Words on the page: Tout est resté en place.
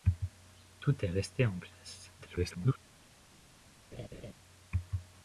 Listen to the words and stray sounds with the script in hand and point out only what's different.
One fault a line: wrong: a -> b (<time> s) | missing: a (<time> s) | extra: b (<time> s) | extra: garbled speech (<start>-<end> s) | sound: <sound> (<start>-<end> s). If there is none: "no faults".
extra: garbled speech (2.2-2.8 s)
sound: laugh (3.9-4.3 s)